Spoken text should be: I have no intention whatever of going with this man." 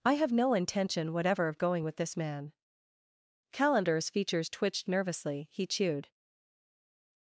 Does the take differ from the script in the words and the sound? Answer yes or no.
yes